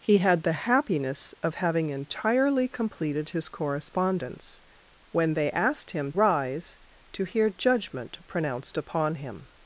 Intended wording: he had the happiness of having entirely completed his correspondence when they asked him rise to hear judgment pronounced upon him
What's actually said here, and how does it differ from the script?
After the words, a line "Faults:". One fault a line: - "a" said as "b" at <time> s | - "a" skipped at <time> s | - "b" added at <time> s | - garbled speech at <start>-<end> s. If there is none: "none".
he had the happiness of having entirely completed his correspondence when they asked him rise to hear judgment pronounced upon him
Faults:
none